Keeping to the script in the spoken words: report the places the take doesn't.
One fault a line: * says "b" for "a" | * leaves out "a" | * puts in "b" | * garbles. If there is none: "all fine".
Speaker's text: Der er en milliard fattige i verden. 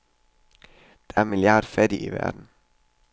all fine